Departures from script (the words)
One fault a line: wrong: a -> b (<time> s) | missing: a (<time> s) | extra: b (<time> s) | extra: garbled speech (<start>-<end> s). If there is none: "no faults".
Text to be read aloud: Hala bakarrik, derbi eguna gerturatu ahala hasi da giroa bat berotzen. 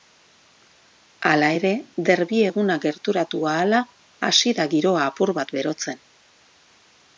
wrong: bakarrik -> ere (1.6 s)
extra: apur (5.1 s)